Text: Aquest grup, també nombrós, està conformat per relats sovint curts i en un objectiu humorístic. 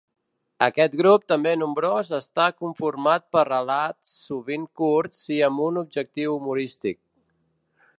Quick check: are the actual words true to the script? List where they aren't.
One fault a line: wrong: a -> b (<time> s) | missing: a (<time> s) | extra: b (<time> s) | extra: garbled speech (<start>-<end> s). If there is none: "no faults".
wrong: en -> amb (5.5 s)